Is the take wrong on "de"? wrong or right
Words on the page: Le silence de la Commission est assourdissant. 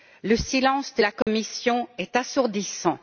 right